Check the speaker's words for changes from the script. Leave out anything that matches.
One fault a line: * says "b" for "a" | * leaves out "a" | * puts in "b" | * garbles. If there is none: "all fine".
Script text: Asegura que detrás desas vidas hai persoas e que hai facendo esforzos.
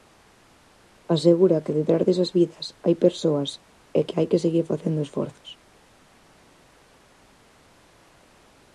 * puts in "que seguir"